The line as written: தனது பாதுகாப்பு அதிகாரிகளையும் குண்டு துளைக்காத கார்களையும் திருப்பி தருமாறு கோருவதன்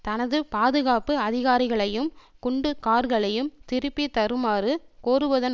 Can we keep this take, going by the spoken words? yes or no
no